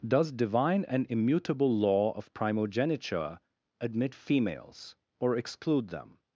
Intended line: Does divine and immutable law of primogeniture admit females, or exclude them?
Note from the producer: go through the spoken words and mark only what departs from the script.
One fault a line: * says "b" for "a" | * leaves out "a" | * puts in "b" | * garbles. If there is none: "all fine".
all fine